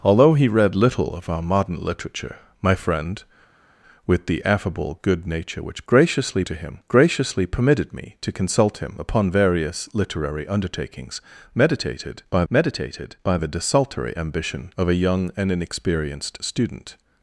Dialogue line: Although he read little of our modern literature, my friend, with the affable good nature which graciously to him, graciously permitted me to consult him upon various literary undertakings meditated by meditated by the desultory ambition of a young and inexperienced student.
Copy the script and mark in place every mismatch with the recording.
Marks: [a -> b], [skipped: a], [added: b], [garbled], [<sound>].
Although he read little of our modern literature, my friend, with the affable good nature which graciously to him, graciously permitted me to consult him upon various literary undertakings meditated by meditated by the desultory ambition of a young and inexperienced student.